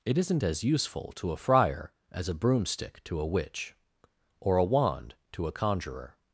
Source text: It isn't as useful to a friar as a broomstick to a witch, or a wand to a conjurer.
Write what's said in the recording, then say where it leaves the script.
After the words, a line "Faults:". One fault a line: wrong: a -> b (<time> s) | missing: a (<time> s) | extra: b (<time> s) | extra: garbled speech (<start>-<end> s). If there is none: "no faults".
It isn't as useful to a friar as a broomstick to a witch, or a wand to a conjurer.
Faults:
no faults